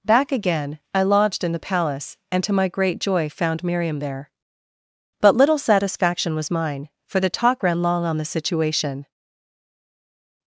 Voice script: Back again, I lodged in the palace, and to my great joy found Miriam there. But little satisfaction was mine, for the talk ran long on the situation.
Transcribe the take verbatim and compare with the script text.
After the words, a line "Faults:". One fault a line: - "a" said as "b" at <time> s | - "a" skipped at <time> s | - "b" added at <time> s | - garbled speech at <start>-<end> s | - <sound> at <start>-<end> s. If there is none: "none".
Back again, I lodged in the palace, and to my great joy found Miriam there. But little satisfaction was mine, for the talk ran long on the situation.
Faults:
none